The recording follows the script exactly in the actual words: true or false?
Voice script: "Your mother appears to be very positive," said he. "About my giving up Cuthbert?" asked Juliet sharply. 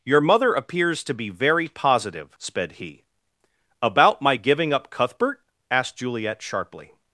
false